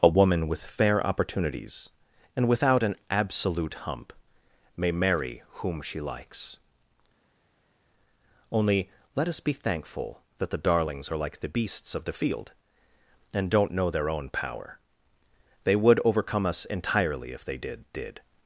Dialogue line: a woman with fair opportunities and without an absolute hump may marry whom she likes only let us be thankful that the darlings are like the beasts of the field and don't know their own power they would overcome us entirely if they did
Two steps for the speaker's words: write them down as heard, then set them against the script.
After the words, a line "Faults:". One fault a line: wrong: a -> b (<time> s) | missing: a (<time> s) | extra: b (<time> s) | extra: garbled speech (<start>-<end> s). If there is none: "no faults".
a woman with fair opportunities and without an absolute hump may marry whom she likes only let us be thankful that the darlings are like the beasts of the field and don't know their own power they would overcome us entirely if they did did
Faults:
extra: did (17.9 s)